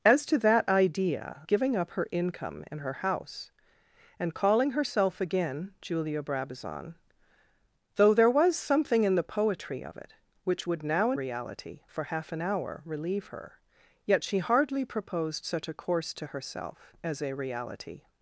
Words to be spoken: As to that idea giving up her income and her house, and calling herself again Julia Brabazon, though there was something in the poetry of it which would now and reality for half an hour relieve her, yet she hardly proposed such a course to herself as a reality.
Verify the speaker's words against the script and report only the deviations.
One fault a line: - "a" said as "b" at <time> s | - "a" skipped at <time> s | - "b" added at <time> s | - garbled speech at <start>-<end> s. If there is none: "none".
none